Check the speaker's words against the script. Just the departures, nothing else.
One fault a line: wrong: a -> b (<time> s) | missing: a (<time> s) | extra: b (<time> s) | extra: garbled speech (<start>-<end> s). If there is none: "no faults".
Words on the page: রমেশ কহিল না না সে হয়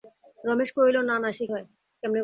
no faults